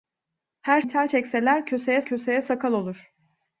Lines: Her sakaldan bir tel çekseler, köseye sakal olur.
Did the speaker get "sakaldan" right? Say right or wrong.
wrong